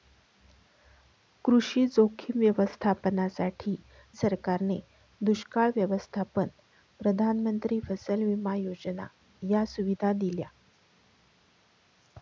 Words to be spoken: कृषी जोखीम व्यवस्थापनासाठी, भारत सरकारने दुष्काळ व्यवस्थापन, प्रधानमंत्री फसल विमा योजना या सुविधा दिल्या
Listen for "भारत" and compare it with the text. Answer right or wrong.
wrong